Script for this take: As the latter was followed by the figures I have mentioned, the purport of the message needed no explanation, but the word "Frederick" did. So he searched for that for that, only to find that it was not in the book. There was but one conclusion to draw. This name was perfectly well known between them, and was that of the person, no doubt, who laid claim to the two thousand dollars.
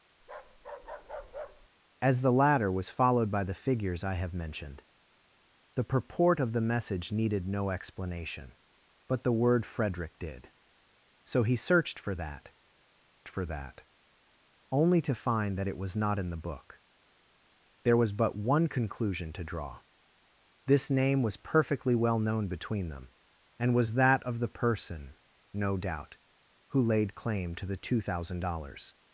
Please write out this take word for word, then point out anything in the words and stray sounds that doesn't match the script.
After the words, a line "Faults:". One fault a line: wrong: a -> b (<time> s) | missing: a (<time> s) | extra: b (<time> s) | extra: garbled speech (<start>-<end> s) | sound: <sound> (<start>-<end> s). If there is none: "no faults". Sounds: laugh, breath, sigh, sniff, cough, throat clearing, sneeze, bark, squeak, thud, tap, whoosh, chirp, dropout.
As the latter was followed by the figures I have mentioned, the purport of the message needed no explanation, but the word "Frederick" did. So he searched for that for that, only to find that it was not in the book. There was but one conclusion to draw. This name was perfectly well known between them, and was that of the person, no doubt, who laid claim to the two thousand dollars.
Faults:
sound: bark (0.2-1.7 s)